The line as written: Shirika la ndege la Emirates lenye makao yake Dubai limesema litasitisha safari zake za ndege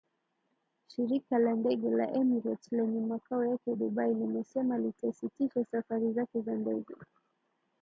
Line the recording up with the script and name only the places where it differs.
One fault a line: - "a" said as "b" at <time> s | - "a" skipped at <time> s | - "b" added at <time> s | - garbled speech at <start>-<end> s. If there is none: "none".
none